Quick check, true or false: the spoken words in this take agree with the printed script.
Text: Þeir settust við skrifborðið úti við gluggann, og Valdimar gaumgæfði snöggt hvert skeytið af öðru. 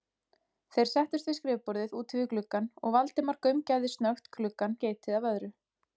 false